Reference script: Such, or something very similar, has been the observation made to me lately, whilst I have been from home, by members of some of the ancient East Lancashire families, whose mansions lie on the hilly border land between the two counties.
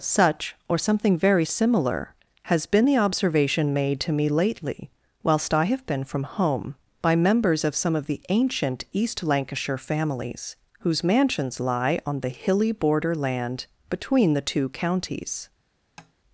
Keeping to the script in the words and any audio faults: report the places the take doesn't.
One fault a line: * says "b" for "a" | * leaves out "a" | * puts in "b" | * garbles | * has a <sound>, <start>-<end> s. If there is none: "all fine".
* has a tap, 16.0-16.1 s